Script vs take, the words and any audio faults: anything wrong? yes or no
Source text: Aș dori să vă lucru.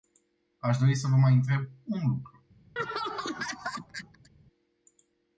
yes